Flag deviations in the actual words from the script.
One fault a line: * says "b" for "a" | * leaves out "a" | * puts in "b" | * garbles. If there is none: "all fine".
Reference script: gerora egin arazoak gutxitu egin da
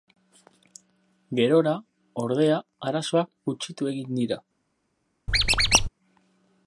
* says "ordea" for "egin"
* says "dira" for "da"